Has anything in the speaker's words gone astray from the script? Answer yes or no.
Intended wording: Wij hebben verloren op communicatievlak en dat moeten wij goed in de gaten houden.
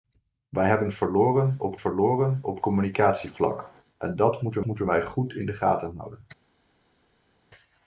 yes